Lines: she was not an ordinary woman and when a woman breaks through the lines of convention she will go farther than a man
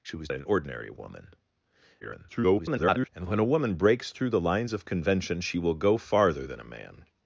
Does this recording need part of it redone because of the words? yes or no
yes